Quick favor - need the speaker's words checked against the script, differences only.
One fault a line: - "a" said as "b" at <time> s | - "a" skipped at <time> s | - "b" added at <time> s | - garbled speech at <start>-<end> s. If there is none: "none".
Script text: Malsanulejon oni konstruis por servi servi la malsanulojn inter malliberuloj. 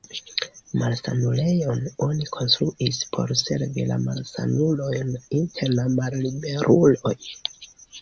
- "servi" skipped at 3.9 s
- "la" added at 5.8 s